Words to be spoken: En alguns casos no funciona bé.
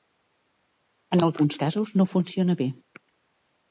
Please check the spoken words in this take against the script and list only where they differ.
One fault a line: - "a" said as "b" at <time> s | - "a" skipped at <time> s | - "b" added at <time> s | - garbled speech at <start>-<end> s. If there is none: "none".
none